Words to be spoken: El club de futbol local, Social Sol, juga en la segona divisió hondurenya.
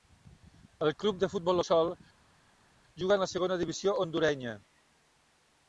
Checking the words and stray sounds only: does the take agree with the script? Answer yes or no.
no